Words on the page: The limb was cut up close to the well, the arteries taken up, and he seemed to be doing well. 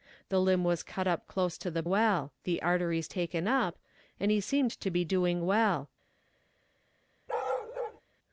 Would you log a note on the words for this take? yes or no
no